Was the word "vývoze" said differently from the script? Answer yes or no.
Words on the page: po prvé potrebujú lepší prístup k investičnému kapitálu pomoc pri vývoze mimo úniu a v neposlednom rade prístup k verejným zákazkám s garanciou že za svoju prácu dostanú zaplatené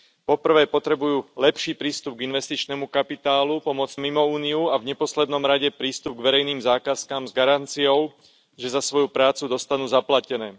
yes